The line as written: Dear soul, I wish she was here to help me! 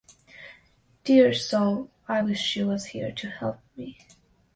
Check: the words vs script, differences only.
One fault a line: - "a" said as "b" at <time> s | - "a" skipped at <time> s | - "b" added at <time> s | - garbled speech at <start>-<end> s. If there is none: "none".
none